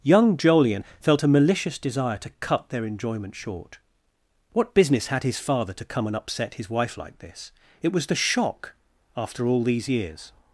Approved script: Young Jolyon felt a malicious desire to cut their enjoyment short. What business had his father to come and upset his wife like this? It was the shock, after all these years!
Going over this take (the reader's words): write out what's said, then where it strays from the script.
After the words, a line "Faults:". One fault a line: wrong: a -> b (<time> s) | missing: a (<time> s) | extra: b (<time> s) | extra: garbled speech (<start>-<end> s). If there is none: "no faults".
Young Jolyon felt a malicious desire to cut their enjoyment short. What business had his father to come and upset his wife like this? It was the shock, after all these years!
Faults:
no faults